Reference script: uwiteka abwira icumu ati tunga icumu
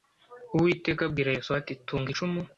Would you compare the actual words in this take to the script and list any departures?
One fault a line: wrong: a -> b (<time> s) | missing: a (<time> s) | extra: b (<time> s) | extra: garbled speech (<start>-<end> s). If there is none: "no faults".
wrong: icumu -> yosuwa (1.4 s)